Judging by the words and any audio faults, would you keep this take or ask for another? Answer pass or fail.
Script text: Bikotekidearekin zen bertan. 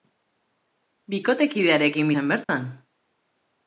fail